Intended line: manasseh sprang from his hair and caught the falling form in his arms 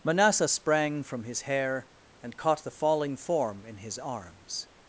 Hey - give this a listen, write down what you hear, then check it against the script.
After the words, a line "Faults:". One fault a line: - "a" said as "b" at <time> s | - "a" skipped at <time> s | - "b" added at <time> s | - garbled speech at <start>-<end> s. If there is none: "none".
manasseh sprang from his hair and caught the falling form in his arms
Faults:
none